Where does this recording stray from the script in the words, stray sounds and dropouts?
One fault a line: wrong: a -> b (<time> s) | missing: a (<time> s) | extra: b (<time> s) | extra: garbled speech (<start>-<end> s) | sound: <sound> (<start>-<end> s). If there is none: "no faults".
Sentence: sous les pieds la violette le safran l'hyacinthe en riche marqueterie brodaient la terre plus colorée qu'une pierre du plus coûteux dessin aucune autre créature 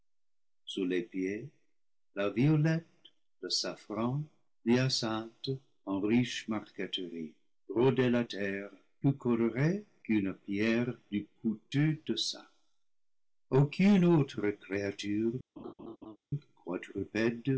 missing: plus (11.3 s)
sound: laugh (15.6-16.2 s)